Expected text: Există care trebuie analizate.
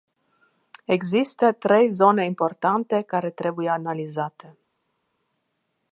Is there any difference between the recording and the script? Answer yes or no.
yes